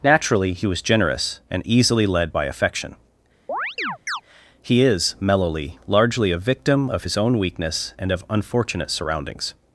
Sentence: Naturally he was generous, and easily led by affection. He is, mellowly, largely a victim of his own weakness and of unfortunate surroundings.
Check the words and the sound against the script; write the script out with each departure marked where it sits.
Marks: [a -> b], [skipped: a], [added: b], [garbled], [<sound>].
Naturally he was generous, and easily led by affection. [chirp] He is, mellowly, largely a victim of his own weakness and of unfortunate surroundings.